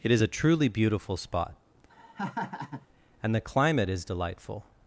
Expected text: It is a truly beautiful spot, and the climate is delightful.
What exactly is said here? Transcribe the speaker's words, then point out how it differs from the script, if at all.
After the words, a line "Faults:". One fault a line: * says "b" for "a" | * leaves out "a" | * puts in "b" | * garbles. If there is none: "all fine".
It is a truly beautiful spot, and the climate is delightful.
Faults:
all fine